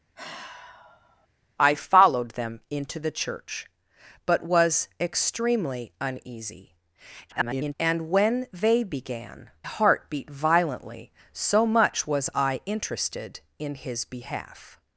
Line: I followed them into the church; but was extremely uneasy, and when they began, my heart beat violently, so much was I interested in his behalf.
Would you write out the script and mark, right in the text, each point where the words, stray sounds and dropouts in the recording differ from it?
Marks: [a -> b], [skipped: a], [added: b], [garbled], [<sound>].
[sigh] I followed them into the church; but was extremely uneasy, [garbled] and when they began, [skipped: my] heart beat violently, so much was I interested in his behalf.